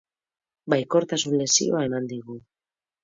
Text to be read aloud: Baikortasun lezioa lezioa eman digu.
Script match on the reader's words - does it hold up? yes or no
no